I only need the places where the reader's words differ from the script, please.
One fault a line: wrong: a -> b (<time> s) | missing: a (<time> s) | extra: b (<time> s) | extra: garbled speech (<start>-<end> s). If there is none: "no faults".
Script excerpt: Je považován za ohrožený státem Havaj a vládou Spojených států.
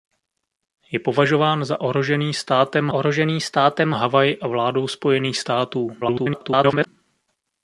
extra: ohrožený státem (2.9 s)
extra: garbled speech (6.0-6.9 s)